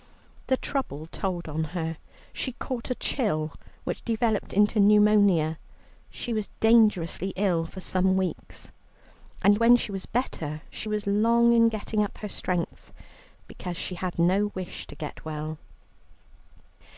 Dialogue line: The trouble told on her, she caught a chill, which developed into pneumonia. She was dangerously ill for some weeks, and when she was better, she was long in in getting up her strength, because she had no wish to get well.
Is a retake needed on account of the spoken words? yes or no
yes